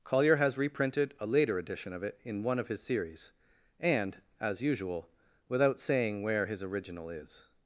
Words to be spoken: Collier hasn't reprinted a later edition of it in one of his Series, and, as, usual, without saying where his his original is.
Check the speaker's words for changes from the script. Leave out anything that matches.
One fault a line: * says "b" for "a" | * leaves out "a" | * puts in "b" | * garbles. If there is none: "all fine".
* says "has" for "hasn't"
* leaves out "his"